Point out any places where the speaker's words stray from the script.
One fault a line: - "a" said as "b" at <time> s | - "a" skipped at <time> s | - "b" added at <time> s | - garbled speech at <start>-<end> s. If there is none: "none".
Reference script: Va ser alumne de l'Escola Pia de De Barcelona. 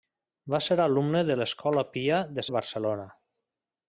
none